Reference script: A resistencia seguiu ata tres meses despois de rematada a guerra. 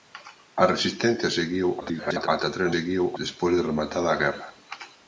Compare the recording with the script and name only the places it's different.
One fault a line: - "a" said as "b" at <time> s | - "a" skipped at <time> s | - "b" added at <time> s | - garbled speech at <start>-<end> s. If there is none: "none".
- garbled speech at 1.8-2.3 s
- "meses" said as "seguiu" at 2.7 s